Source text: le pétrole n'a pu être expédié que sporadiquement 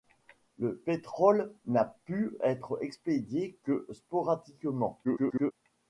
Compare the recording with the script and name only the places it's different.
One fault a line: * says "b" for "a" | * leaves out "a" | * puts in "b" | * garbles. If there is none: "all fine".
* garbles